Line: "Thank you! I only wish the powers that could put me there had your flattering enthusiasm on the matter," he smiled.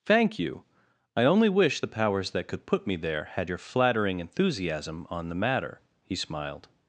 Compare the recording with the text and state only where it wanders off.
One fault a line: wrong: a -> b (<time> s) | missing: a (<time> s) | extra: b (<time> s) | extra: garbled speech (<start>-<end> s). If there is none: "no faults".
no faults